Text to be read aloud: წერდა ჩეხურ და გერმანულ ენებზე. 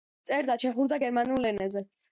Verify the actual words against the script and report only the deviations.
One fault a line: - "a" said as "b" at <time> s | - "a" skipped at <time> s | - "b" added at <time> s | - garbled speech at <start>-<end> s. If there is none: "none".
none